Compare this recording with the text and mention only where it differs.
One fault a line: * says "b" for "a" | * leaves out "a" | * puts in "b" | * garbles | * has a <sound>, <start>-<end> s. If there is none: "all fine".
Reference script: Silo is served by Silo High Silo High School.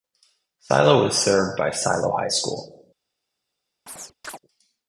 * leaves out "Silo High"
* has a chirp, 3.9-4.4 s